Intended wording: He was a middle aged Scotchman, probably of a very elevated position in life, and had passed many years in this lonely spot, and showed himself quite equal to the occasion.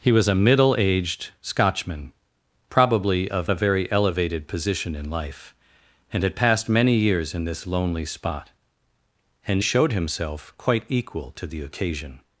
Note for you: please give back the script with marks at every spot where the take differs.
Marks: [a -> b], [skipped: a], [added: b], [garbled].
He was a middle aged Scotchman, probably of a very elevated position in life, and had passed many years in this lonely spot, and showed himself quite equal to the occasion.